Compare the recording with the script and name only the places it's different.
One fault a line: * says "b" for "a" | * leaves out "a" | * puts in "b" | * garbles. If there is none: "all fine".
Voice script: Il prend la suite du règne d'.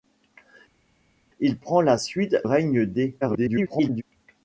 * leaves out "du"
* garbles